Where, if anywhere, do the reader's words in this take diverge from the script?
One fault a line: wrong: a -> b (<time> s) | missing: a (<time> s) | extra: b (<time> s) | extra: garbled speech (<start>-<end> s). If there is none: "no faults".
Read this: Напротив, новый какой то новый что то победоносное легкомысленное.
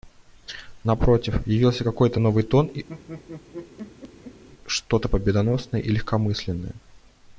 wrong: новый -> явился (1.4 s)
extra: тон (2.4 s)
extra: и (5.8 s)